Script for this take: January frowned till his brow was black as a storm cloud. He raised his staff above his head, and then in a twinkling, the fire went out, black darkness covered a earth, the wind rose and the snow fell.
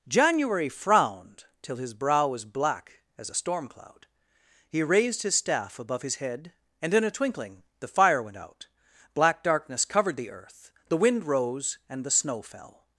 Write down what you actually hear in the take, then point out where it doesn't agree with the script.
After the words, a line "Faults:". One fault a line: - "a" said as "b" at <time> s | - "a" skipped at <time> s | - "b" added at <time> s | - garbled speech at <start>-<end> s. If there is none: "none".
January frowned till his brow was black as a storm cloud. He raised his staff above his head, and in a twinkling, the fire went out, black darkness covered the earth, the wind rose and the snow fell.
Faults:
- "then" skipped at 6.9 s
- "a" said as "the" at 10.2 s